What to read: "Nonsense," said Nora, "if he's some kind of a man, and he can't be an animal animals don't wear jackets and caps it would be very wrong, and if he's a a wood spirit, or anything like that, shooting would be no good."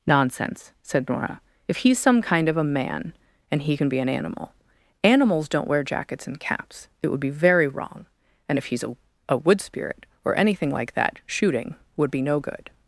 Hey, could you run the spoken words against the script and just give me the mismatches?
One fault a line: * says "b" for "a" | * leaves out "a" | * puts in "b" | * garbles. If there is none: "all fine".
* says "can" for "can't"